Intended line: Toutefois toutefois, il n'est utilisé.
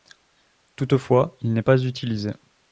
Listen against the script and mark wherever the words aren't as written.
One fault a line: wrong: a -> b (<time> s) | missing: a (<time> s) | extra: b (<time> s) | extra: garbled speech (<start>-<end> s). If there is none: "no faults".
missing: toutefois (1.4 s)
extra: pas (1.6 s)